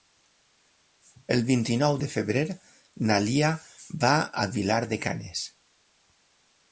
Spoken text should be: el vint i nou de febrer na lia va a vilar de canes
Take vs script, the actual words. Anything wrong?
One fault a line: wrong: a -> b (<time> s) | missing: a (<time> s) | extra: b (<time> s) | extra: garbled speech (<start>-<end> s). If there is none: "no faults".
no faults